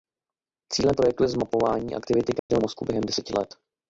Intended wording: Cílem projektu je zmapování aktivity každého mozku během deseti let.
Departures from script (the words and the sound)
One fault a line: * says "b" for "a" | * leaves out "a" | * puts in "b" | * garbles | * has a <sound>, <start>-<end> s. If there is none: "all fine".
* has a dropout, 2.4-2.5 s